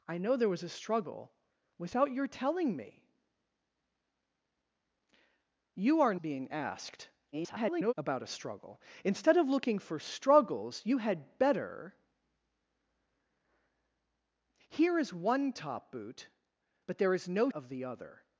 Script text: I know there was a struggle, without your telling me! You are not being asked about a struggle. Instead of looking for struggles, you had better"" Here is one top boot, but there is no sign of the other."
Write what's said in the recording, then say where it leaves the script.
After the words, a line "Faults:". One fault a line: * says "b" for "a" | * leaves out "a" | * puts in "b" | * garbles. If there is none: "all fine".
I know there was a struggle, without your telling me! You are being asked [garbled] about a struggle. Instead of looking for struggles, you had better"" Here is one top boot, but there is no of the other."
Faults:
* leaves out "not"
* garbles
* leaves out "sign"